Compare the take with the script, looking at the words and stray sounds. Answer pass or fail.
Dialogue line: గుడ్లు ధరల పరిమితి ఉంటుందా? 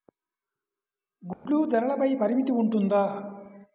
fail